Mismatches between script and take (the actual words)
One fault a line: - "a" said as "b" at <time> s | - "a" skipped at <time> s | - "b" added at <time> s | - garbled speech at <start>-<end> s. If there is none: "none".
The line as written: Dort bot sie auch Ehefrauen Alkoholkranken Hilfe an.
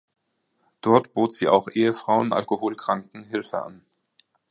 none